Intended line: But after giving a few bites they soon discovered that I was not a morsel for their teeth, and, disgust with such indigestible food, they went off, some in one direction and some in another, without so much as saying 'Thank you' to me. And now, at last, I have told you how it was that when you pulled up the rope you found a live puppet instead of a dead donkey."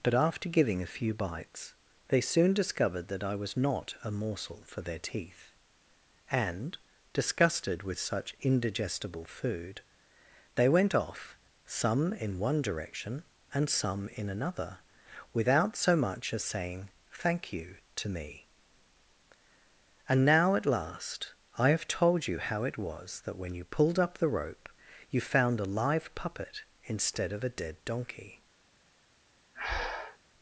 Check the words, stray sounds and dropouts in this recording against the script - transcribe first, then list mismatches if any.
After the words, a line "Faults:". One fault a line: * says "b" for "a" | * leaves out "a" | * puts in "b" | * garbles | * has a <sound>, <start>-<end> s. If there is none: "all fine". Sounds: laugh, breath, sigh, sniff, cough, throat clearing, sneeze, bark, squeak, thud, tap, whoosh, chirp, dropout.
But after giving a few bites they soon discovered that I was not a morsel for their teeth, and, disgusted with such indigestible food, they went off, some in one direction and some in another, without so much as saying 'Thank you' to me. And now, at last, I have told you how it was that when you pulled up the rope you found a live puppet instead of a dead donkey."
Faults:
* says "disgusted" for "disgust"
* has a breath, 29.5-30.2 s